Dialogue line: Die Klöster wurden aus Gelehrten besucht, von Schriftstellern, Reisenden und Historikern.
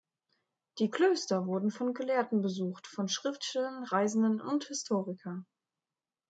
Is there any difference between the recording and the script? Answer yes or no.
yes